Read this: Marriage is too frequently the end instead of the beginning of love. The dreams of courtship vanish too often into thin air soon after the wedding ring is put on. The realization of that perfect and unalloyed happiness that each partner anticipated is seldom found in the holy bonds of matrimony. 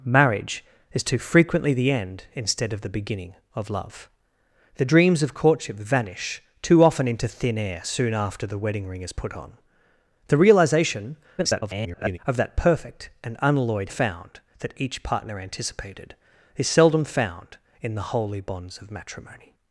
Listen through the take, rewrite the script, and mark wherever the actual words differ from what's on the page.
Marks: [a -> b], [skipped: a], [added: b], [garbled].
Marriage is too frequently the end instead of the beginning of love. The dreams of courtship vanish too often into thin air soon after the wedding ring is put on. The realization [garbled] of that perfect and unalloyed [happiness -> found] that each partner anticipated is seldom found in the holy bonds of matrimony.